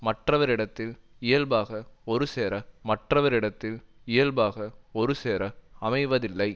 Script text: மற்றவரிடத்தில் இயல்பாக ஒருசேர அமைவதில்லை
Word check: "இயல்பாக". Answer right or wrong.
right